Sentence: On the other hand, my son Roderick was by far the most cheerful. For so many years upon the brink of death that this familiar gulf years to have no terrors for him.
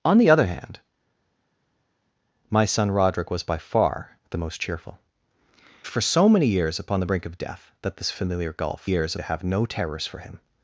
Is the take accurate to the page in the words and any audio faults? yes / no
yes